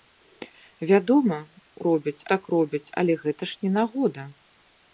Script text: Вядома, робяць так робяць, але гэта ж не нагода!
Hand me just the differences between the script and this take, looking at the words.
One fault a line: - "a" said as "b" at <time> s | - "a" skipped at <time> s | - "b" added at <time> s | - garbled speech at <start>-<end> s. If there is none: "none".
none